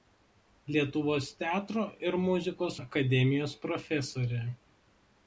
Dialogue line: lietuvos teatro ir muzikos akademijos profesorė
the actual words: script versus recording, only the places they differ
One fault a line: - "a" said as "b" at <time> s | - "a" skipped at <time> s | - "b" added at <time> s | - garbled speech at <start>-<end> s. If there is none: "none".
none